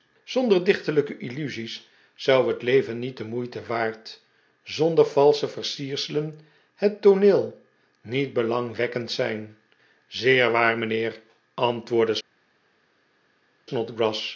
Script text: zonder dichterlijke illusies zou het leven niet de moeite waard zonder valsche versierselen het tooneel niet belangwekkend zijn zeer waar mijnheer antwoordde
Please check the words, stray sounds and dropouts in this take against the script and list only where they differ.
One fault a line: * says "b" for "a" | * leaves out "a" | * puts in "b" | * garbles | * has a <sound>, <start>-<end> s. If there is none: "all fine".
all fine